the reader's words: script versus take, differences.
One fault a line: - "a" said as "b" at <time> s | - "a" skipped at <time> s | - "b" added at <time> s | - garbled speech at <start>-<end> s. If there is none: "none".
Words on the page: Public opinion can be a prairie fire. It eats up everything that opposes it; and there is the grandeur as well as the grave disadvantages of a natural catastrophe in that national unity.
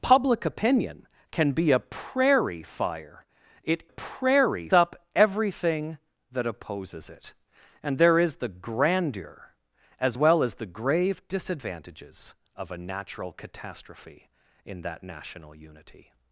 - "eats" said as "prairie" at 3.9 s